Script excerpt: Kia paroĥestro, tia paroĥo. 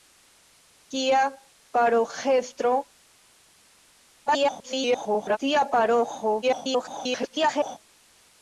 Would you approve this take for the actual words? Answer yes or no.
no